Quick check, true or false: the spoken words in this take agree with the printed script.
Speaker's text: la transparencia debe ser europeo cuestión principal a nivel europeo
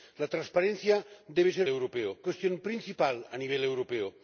true